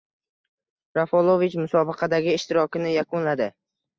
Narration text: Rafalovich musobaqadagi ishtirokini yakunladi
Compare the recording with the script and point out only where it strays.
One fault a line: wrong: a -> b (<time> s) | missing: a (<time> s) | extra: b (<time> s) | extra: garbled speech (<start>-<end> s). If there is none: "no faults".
no faults